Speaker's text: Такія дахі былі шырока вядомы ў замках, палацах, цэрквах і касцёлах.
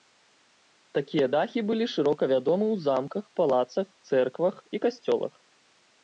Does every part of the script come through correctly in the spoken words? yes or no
yes